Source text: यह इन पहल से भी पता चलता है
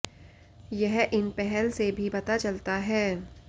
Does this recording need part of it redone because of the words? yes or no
no